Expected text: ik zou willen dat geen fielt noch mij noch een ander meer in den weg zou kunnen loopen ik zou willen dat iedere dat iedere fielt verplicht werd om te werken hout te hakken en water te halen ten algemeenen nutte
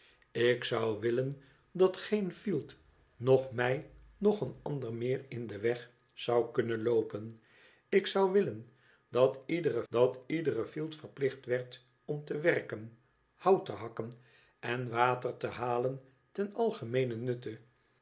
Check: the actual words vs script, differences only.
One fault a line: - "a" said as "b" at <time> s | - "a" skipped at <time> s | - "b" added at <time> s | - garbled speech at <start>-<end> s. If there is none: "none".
none